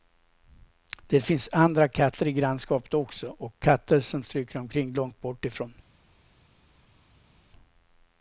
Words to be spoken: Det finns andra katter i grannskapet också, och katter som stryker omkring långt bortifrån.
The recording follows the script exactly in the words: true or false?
true